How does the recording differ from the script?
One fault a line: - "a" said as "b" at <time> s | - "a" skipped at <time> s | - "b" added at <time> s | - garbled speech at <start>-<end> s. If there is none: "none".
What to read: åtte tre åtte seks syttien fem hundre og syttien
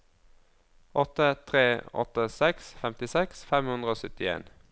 - "syttien" said as "femtiseks" at 2.8 s